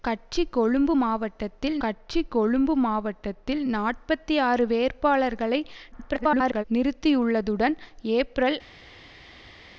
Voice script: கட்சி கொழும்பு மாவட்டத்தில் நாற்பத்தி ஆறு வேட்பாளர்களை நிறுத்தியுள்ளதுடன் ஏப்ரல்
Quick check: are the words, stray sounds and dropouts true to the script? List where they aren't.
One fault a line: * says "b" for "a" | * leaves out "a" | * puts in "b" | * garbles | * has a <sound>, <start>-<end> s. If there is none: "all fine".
* puts in "கட்சி கொழும்பு மாவட்டத்தில்"
* garbles